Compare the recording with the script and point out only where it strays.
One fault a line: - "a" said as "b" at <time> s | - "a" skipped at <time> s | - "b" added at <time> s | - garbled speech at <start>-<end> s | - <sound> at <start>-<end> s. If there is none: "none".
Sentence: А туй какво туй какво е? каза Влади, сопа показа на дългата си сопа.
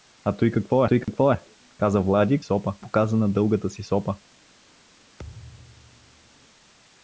- dropout at 1.0-1.1 s
- thud at 5.2-6.5 s